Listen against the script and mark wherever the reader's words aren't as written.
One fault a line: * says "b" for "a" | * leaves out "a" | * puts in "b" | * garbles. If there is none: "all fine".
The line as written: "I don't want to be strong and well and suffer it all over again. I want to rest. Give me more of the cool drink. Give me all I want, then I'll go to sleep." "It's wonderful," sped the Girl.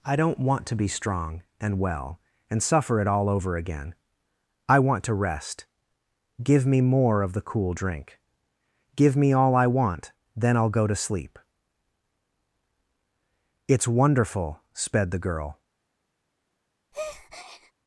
all fine